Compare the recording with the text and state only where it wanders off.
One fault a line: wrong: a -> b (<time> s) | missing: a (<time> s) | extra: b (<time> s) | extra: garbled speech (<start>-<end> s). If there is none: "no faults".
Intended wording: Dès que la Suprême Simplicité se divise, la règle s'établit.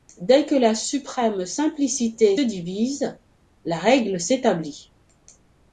missing: se (2.4 s)